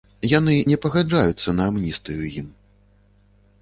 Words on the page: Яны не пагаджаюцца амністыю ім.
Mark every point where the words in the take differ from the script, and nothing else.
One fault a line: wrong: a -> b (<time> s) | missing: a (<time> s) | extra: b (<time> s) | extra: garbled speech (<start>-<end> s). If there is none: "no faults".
extra: на (1.6 s)